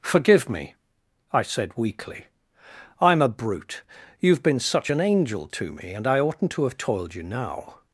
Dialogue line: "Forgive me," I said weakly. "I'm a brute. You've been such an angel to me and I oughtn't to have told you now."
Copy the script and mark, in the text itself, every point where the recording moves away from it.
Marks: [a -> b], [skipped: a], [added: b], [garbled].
"Forgive me," I said weakly. "I'm a brute. You've been such an angel to me and I oughtn't to have [told -> toiled] you now."